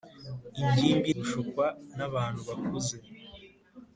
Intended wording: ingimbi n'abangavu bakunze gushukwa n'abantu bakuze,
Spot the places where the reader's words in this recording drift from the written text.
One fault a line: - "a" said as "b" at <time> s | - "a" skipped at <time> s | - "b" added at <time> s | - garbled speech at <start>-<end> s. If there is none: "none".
- "n'abangavu bakunze" skipped at 1.1 s